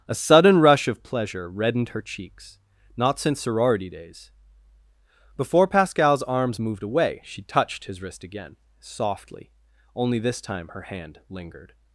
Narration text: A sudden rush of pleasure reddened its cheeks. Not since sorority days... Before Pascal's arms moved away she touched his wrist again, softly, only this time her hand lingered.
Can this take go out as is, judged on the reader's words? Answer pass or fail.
fail